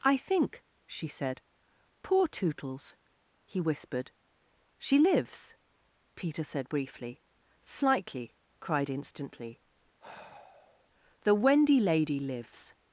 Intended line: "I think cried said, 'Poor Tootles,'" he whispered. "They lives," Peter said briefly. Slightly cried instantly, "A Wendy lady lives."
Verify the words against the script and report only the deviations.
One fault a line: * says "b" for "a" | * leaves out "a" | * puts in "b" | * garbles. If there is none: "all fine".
* says "she" for "cried"
* says "She" for "They"
* says "The" for "A"